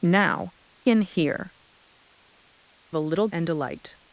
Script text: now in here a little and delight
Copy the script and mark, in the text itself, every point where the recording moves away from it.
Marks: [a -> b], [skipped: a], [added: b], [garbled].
now in here a little and delight